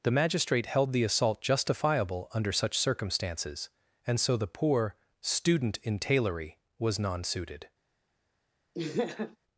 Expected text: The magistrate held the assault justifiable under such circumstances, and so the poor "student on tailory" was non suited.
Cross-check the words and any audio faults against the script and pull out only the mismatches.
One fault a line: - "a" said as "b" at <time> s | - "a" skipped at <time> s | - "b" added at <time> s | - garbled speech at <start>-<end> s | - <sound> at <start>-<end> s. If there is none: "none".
- "on" said as "in" at 5.8 s
- laugh at 8.7-9.4 s